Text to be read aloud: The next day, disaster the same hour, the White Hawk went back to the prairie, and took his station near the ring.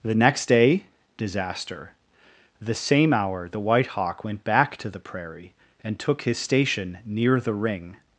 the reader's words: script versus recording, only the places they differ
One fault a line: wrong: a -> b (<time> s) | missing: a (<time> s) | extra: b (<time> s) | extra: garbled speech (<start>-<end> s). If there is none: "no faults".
no faults